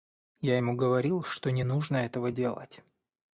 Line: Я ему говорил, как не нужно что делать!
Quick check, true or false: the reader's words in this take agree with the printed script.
false